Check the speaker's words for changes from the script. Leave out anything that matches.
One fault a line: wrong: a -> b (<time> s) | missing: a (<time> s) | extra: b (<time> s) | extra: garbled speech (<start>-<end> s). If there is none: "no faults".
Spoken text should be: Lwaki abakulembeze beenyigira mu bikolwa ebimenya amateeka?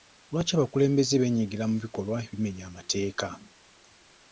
no faults